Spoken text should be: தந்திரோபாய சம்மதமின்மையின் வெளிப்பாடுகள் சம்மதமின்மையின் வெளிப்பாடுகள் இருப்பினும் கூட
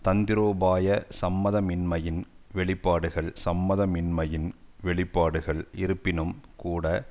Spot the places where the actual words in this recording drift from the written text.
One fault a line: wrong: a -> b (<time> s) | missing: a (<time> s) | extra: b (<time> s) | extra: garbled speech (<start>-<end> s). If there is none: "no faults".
no faults